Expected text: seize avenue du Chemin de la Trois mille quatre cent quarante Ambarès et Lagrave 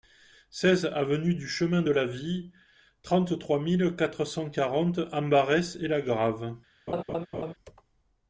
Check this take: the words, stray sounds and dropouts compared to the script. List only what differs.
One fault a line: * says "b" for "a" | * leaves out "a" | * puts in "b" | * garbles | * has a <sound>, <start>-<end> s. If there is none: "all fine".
* puts in "Vie trente"
* has a laugh, 6.9-7.5 s